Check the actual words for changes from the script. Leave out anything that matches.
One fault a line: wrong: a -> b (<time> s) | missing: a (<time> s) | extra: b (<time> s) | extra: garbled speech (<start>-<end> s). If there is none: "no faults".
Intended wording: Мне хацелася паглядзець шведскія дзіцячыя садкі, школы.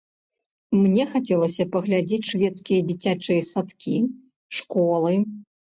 no faults